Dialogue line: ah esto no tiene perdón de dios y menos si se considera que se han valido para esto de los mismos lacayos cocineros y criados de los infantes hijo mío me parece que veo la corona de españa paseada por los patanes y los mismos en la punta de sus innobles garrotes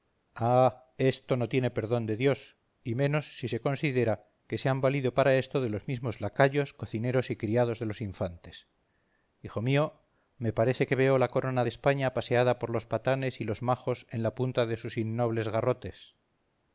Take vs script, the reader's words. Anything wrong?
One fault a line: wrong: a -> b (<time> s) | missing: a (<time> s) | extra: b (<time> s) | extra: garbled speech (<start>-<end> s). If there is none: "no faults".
wrong: mismos -> majos (13.6 s)